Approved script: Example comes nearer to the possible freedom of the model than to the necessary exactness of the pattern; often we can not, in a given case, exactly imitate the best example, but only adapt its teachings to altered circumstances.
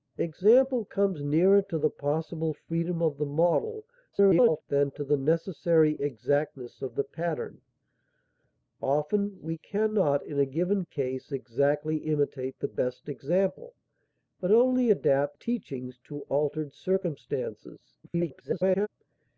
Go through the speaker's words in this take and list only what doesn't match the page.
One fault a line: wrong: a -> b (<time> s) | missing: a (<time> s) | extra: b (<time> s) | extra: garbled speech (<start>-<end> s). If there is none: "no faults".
extra: garbled speech (4.1-4.6 s)
missing: its (15.4 s)
extra: garbled speech (18.0-18.9 s)